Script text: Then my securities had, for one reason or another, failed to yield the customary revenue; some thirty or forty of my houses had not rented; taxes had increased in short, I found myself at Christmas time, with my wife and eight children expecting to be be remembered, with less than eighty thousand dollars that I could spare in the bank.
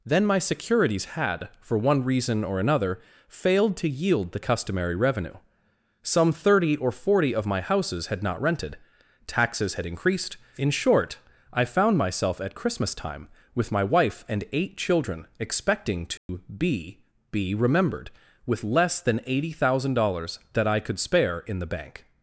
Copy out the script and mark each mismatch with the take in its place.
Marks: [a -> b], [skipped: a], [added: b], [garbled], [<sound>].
Then my securities had, for one reason or another, failed to yield the customary revenue; some thirty or forty of my houses had not rented; taxes had increased in short, I found myself at Christmas time, with my wife and eight children expecting to [dropout] be be remembered, with less than eighty thousand dollars that I could spare in the bank.